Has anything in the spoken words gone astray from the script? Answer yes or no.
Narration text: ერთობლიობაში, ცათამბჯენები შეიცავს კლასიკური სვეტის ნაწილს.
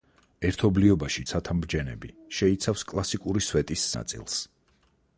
no